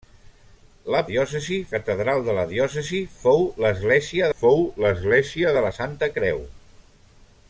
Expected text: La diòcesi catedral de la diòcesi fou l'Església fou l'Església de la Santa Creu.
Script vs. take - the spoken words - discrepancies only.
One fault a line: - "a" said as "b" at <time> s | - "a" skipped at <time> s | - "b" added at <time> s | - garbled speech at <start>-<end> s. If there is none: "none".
none